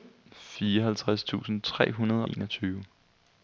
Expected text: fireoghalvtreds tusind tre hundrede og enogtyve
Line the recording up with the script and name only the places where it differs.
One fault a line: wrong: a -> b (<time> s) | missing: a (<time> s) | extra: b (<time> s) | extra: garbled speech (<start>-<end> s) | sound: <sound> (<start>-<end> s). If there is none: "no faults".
missing: og (2.3 s)